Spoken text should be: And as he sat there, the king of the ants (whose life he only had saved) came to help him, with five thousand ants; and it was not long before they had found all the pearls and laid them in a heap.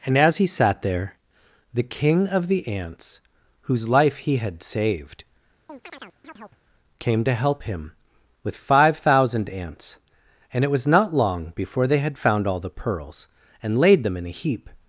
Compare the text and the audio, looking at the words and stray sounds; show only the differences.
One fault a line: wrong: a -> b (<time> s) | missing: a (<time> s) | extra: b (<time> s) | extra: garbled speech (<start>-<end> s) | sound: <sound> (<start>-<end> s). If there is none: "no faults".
missing: only (4.4 s)
sound: chirp (5.7-6.6 s)